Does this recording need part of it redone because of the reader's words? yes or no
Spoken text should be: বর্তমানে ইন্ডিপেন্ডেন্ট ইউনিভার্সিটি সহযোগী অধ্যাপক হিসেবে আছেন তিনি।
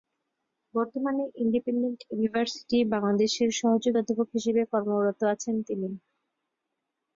yes